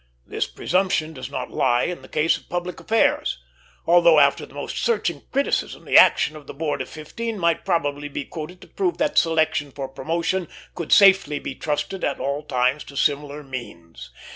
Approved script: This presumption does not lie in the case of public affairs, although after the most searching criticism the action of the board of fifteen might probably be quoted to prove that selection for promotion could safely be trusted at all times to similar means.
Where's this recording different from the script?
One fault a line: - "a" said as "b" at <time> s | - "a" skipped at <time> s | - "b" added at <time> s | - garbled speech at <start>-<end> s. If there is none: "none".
none